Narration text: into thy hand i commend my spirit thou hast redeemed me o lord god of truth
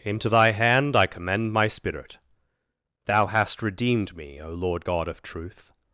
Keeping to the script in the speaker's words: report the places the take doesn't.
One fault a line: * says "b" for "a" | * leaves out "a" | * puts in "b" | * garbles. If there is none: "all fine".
all fine